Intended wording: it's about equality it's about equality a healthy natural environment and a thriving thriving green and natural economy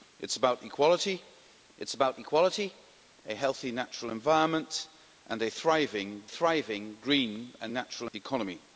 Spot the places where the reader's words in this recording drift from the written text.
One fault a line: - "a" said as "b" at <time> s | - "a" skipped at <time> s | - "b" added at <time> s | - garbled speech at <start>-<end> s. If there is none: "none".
none